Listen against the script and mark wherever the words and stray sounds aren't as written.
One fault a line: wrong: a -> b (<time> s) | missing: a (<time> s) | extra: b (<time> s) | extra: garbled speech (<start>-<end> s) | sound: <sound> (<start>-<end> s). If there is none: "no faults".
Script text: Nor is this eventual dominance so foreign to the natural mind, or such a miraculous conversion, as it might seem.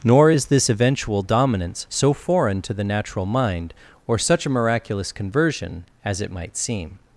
no faults